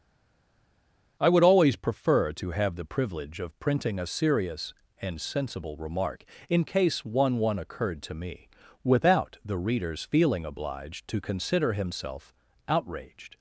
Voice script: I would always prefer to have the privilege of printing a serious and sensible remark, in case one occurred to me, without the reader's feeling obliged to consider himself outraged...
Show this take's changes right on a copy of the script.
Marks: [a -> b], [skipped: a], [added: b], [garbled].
I would always prefer to have the privilege of printing a serious and sensible remark, in case one [added: one] occurred to me, without the reader's feeling obliged to consider himself outraged...